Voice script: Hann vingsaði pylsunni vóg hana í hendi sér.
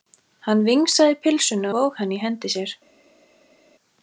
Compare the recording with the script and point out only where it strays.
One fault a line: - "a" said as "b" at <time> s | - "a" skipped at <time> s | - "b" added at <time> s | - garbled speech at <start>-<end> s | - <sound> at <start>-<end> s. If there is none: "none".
none